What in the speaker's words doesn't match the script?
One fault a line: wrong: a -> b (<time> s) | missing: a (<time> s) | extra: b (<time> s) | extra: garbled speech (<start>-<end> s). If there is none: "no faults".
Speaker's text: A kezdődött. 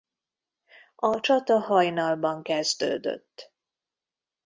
extra: csata hajnalban (1.2 s)